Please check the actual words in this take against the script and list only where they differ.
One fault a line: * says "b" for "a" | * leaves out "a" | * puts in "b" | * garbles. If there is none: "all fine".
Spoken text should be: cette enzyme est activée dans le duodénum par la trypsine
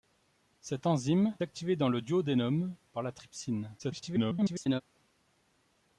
* leaves out "est"
* garbles